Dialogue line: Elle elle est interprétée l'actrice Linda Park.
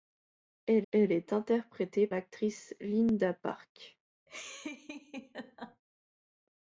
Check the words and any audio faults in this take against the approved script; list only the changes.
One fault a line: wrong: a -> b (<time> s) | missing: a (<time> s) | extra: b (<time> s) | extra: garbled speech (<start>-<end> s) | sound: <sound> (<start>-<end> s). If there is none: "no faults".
sound: laugh (4.3-5.8 s)